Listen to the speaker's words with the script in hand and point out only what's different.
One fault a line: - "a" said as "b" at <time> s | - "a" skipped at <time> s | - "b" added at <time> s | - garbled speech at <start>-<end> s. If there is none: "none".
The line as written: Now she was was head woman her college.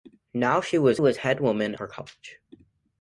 none